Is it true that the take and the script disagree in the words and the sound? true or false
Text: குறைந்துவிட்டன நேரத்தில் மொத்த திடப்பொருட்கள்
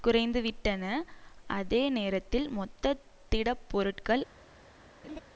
true